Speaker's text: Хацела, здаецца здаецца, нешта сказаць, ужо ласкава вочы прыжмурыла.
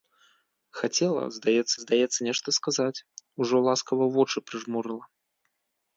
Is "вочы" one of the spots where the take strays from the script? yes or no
no